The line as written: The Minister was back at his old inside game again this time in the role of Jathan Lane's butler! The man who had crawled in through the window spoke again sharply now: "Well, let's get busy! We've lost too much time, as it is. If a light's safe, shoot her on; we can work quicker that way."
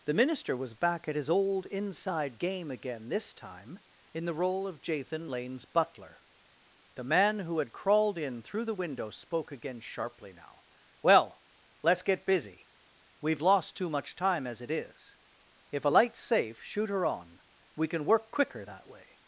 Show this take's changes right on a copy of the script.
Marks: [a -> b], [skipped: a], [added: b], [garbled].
The Minister was back at his old inside game again this time in the role of Jathan Lane's butler! The man who had crawled in through the window spoke again sharply now: "Well, let's get busy! We've lost too much time, as it is. If a light's safe, shoot her on; we can work quicker that way."